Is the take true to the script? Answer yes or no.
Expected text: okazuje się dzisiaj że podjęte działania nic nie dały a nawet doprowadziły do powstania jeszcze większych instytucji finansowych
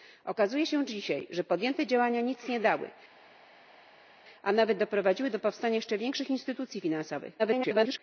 no